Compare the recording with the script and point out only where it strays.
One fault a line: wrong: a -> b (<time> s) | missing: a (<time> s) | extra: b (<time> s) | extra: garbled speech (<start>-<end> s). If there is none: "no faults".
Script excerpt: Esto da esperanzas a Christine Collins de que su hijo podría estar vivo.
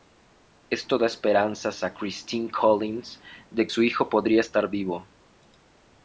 missing: que (3.7 s)